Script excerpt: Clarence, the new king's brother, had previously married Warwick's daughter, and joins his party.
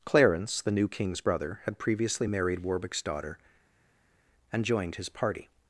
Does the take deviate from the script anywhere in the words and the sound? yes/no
yes